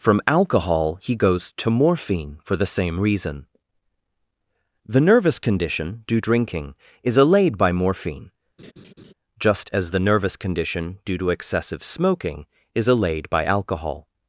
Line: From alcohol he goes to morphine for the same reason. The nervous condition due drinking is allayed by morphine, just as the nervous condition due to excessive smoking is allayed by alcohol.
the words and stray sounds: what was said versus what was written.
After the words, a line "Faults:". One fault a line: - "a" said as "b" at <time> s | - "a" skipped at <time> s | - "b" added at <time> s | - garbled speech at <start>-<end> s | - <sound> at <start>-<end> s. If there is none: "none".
From alcohol he goes to morphine for the same reason. The nervous condition due drinking is allayed by morphine, just as the nervous condition due to excessive smoking is allayed by alcohol.
Faults:
- laugh at 8.6-9.1 s